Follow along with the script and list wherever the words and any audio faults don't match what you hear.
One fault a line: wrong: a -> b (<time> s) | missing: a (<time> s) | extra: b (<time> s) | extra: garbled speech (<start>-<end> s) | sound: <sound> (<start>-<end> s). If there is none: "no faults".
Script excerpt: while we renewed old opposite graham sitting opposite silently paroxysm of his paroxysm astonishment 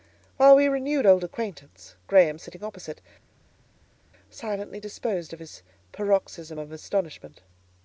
wrong: opposite -> acquaintance (1.2 s)
wrong: paroxysm -> disposed (4.8 s)
extra: of (6.6 s)